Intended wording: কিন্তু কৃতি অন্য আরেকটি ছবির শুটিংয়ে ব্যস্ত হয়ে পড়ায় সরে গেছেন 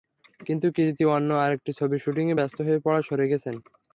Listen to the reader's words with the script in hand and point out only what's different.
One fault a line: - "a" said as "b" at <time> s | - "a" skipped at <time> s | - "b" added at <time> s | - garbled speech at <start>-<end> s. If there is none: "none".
none